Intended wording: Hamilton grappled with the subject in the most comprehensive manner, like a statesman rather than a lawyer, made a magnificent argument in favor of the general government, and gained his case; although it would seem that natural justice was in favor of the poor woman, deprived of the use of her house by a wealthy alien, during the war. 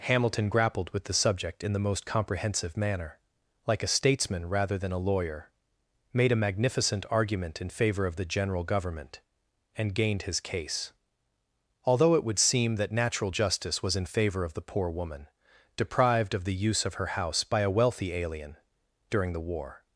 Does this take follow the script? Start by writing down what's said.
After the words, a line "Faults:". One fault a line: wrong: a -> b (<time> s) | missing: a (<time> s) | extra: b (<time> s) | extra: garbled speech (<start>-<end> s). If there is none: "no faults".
Hamilton grappled with the subject in the most comprehensive manner, like a statesman rather than a lawyer, made a magnificent argument in favor of the general government, and gained his case; although it would seem that natural justice was in favor of the poor woman, deprived of the use of her house by a wealthy alien, during the war.
Faults:
no faults